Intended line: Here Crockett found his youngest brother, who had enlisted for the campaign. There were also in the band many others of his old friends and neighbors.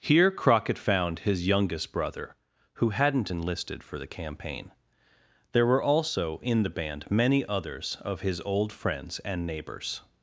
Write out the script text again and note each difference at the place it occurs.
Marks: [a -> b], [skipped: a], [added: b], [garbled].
Here Crockett found his youngest brother, who [had -> hadn't] enlisted for the campaign. There were also in the band many others of his old friends and neighbors.